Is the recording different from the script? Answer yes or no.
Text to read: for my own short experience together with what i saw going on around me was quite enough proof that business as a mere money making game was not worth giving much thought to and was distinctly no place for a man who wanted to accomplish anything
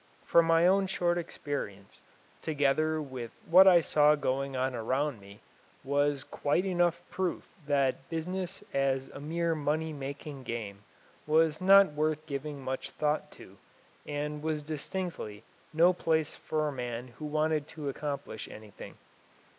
no